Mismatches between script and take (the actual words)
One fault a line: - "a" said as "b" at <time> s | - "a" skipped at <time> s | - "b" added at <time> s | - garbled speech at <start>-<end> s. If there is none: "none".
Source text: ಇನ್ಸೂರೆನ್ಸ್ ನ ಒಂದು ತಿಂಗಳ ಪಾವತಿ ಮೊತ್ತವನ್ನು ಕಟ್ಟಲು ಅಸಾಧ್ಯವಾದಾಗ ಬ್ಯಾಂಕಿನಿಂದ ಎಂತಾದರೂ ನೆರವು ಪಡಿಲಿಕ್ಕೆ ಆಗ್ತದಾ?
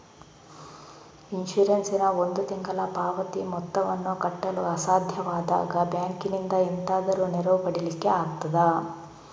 none